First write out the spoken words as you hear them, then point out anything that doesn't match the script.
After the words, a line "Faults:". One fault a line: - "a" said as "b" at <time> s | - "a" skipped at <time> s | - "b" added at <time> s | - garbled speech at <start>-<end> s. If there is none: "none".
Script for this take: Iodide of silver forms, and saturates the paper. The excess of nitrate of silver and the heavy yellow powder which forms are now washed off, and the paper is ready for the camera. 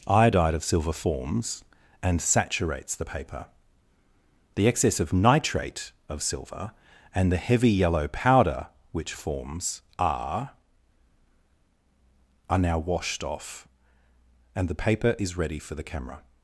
Iodide of silver forms, and saturates the paper. The excess of nitrate of silver and the heavy yellow powder which forms are are now washed off, and the paper is ready for the camera.
Faults:
- "are" added at 12.5 s